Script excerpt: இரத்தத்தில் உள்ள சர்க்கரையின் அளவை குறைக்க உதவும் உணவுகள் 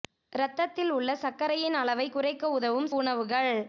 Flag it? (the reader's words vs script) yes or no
no